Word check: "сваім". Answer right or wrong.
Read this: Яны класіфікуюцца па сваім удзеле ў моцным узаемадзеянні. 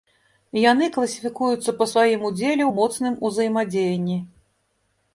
right